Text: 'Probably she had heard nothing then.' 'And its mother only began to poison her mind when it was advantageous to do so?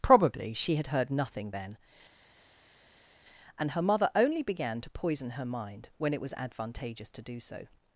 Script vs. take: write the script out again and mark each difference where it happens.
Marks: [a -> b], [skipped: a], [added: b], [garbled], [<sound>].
'Probably she had heard nothing then.' 'And [its -> her] mother only began to poison her mind when it was advantageous to do so?